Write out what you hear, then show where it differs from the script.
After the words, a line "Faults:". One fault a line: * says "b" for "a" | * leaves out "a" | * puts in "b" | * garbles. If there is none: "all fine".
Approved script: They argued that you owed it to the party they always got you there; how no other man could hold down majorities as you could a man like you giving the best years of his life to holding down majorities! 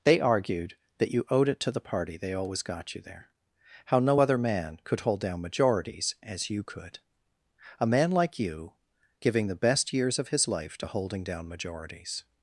They argued that you owed it to the party they always got you there; how no other man could hold down majorities as you could a man like you giving the best years of his life to holding down majorities!
Faults:
all fine